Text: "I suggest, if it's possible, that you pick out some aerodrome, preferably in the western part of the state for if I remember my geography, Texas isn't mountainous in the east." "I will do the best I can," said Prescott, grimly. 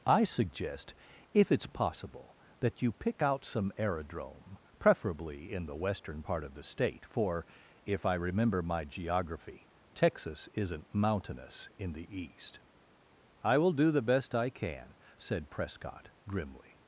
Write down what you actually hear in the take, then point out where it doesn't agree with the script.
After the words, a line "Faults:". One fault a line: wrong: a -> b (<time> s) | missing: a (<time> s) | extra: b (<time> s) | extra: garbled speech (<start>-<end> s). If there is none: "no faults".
"I suggest, if it's possible, that you pick out some aerodrome, preferably in the western part of the state for if I remember my geography, Texas isn't mountainous in the east." "I will do the best I can," said Prescott, grimly.
Faults:
no faults